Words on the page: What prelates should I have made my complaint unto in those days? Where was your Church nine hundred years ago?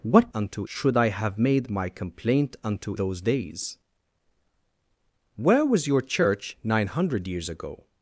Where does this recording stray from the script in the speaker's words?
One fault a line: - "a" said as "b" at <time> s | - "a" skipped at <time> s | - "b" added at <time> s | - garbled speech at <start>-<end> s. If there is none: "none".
- "prelates" said as "unto" at 0.3 s
- "in" skipped at 2.9 s